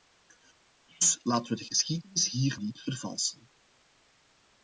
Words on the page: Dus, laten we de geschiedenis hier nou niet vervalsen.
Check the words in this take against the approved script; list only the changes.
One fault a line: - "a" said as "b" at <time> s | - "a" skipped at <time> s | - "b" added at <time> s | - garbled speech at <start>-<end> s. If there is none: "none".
- "nou" skipped at 2.6 s